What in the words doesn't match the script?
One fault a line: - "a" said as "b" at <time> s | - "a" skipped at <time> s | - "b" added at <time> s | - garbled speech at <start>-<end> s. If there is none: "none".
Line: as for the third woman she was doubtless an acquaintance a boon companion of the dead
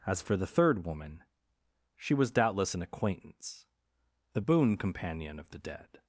- "a" said as "the" at 4.3 s